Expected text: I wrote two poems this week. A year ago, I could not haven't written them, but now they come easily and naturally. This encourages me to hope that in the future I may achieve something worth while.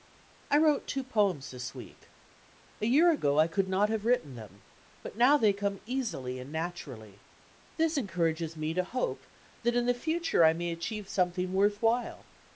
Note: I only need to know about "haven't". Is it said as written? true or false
false